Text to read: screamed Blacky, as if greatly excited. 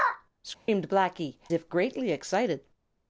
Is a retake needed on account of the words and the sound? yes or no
yes